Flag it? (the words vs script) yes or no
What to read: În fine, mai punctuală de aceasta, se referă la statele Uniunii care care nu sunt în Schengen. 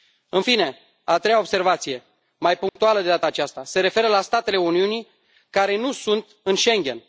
yes